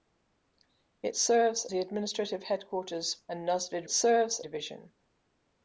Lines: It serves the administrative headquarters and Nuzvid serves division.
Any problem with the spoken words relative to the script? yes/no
no